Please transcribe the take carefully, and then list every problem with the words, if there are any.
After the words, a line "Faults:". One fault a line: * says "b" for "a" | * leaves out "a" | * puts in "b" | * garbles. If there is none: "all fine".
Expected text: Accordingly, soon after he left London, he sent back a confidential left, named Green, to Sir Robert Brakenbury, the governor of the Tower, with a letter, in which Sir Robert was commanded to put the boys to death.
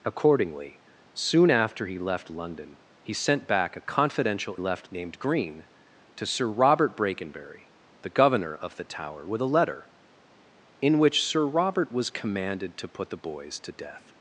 Accordingly, soon after he left London, he sent back a confidential left, named Green, to Sir Robert Brakenbury, the governor of the Tower, with a letter, in which Sir Robert was commanded to put the boys to death.
Faults:
all fine